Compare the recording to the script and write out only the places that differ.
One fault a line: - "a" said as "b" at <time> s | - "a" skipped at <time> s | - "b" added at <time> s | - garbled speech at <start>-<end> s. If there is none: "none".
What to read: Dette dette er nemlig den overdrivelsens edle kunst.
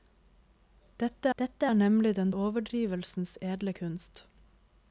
none